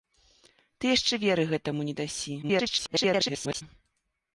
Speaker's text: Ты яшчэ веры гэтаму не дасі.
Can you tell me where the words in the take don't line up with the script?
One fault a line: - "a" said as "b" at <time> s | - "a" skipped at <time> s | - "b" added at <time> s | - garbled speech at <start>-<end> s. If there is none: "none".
- garbled speech at 2.4-3.6 s